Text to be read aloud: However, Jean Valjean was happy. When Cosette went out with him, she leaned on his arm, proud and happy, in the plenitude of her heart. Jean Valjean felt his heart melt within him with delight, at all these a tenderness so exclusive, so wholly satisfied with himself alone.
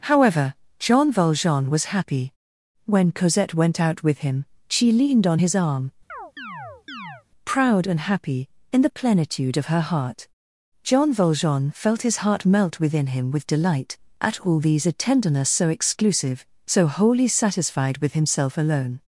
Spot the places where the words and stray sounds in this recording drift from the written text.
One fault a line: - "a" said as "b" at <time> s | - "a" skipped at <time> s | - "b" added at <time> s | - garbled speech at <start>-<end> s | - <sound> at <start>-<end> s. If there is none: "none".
- chirp at 6.1-7.2 s